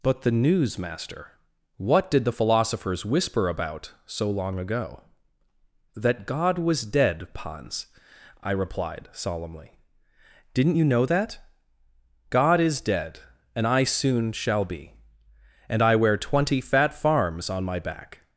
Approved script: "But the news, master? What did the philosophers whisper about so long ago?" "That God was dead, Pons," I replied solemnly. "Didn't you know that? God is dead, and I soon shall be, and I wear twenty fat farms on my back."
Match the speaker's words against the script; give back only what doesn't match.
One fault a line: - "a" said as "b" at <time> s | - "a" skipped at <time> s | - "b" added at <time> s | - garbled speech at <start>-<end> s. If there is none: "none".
none